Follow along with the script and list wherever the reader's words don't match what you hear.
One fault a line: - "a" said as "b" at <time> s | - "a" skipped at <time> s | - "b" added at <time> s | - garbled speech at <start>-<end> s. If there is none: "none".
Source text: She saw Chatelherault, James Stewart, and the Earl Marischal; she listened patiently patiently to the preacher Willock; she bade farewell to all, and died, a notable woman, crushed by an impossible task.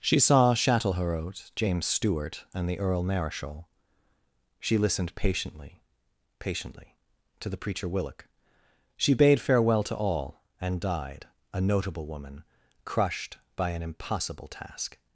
none